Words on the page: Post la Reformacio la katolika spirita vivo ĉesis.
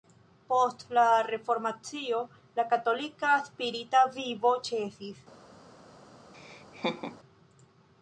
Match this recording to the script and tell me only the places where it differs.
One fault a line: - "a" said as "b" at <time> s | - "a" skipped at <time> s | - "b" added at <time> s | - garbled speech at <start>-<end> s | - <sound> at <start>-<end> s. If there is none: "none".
- laugh at 6.3-7.2 s